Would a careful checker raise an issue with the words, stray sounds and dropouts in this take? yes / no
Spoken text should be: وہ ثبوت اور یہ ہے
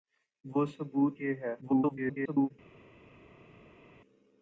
yes